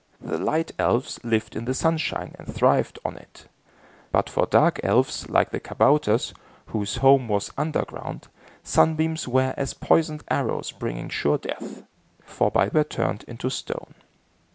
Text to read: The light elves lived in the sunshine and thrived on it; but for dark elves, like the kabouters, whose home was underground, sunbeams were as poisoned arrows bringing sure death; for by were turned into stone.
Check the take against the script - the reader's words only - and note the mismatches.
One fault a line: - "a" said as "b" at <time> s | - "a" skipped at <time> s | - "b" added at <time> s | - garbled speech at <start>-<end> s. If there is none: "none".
none